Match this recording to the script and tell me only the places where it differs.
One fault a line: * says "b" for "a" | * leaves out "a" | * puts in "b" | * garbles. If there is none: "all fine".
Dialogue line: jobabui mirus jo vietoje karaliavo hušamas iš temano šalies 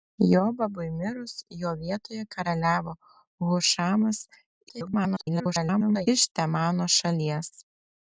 * garbles